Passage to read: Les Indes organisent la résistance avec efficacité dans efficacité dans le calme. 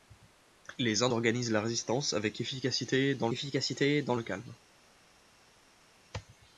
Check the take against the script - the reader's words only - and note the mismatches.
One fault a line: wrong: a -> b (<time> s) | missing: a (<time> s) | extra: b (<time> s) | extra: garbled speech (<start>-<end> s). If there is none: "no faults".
no faults